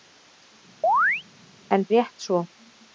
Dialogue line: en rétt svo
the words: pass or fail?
pass